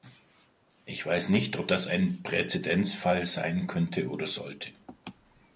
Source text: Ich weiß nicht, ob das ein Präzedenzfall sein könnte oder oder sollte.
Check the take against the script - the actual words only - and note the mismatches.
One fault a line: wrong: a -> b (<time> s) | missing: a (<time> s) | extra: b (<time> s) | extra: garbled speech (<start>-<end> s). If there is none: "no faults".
missing: oder (4.3 s)